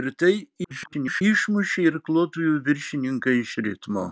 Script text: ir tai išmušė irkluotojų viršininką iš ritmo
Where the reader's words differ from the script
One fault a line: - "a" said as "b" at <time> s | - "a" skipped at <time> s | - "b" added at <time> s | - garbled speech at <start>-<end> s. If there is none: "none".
- garbled speech at 0.6-1.2 s